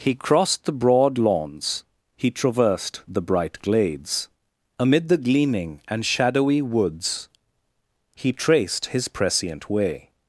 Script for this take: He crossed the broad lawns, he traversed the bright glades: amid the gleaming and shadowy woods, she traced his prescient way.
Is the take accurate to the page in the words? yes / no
no